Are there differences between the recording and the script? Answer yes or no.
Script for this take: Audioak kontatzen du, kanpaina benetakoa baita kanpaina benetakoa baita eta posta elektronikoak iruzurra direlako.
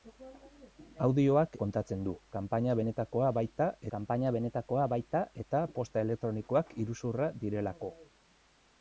no